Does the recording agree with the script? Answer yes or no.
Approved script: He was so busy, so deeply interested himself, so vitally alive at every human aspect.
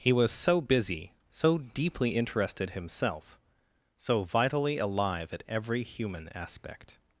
yes